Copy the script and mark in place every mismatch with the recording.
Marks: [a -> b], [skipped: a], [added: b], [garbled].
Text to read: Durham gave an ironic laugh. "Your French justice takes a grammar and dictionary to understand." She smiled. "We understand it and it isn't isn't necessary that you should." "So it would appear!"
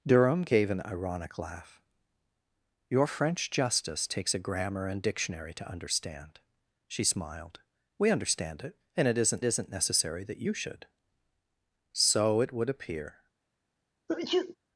Durham gave an ironic laugh. "Your French justice takes a grammar and dictionary to understand." She smiled. "We understand it and it isn't isn't necessary that you should." "So it would appear!"